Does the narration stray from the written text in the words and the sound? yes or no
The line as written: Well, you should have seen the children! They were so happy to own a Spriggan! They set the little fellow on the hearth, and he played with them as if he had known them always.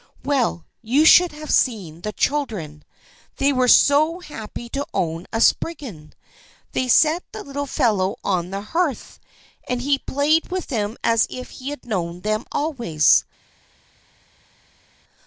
no